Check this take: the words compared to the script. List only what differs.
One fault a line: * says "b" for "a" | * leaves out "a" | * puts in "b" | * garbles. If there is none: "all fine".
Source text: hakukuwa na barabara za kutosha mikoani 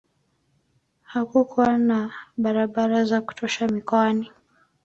all fine